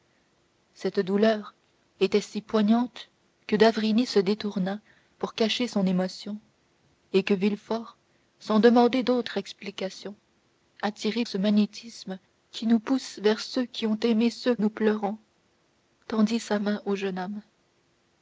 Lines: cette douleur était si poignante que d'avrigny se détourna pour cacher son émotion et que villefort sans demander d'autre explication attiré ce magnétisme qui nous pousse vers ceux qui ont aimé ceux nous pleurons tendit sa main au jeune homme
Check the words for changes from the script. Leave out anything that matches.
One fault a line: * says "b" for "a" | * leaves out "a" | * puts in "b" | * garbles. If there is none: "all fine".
all fine